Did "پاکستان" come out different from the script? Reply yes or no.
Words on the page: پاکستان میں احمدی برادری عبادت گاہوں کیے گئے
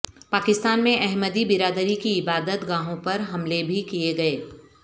no